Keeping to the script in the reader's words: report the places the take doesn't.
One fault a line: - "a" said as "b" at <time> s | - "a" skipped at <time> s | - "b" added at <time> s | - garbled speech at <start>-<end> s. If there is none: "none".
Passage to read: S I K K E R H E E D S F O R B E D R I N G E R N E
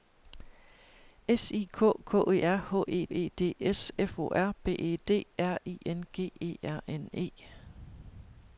none